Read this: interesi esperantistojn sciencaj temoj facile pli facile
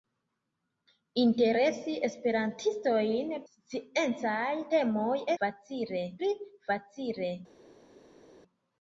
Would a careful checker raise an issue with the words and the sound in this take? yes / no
no